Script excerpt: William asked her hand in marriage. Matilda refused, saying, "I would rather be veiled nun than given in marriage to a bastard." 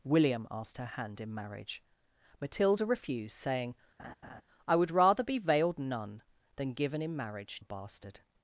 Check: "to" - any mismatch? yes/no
yes